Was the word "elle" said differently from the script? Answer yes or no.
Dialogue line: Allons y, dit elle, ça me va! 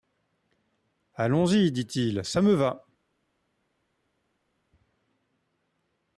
yes